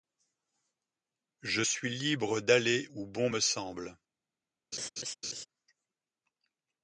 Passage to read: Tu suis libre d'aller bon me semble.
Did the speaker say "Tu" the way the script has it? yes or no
no